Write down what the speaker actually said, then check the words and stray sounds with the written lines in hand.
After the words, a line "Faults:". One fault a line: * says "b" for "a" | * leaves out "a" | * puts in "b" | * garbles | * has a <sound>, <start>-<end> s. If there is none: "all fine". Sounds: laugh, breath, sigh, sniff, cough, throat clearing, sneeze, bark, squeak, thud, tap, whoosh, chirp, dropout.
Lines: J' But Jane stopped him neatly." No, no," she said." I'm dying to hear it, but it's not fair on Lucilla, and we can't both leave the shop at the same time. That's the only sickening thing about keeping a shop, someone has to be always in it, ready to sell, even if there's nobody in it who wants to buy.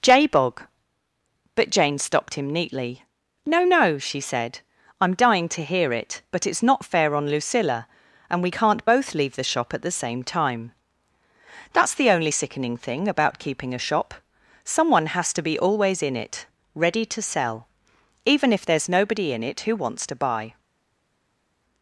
J' bog But Jane stopped him neatly." No, no," she said." I'm dying to hear it, but it's not fair on Lucilla, and we can't both leave the shop at the same time. That's the only sickening thing about keeping a shop, someone has to be always in it, ready to sell, even if there's nobody in it who wants to buy.
Faults:
* puts in "bog"